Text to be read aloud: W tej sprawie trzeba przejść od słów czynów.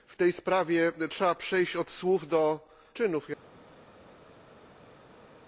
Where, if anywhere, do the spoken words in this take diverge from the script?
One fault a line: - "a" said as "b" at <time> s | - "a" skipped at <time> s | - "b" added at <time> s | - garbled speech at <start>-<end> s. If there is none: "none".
none